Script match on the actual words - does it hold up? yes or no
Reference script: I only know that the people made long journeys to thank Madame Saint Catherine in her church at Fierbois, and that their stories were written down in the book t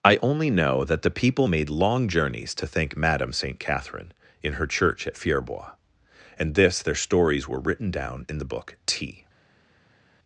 no